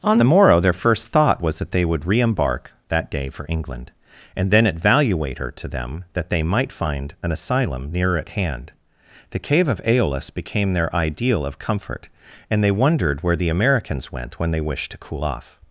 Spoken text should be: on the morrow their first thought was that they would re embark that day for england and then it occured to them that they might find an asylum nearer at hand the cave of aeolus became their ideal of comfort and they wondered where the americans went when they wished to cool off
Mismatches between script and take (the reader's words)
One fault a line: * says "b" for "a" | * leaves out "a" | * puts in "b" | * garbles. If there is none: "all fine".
* says "valuator" for "occured"